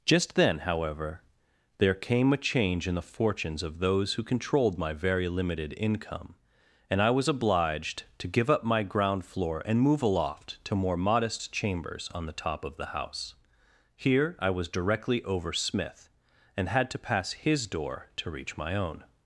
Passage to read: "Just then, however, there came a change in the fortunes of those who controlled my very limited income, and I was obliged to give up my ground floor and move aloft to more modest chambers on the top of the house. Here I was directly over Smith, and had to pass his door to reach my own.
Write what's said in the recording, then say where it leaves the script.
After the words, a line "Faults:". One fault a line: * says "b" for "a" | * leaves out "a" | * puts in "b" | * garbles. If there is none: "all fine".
"Just then, however, there came a change in the fortunes of those who controlled my very limited income, and I was obliged to give up my ground floor and move aloft to more modest chambers on the top of the house. Here I was directly over Smith, and had to pass his door to reach my own.
Faults:
all fine